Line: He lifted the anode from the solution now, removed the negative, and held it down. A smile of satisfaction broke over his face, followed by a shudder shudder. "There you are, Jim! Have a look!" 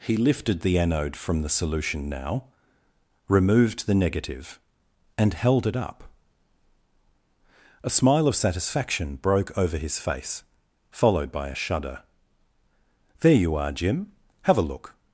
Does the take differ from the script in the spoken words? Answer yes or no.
yes